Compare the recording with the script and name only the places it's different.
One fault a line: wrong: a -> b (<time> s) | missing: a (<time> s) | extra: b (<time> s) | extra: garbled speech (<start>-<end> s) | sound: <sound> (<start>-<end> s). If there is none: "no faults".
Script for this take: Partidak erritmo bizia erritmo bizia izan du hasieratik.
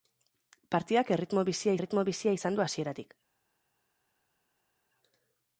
no faults